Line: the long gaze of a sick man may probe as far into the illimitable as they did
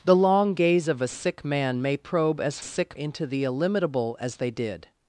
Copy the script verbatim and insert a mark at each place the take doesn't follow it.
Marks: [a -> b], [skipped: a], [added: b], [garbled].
the long gaze of a sick man may probe as [far -> sick] into the illimitable as they did